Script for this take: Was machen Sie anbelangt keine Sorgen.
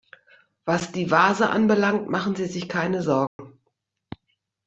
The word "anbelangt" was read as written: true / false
false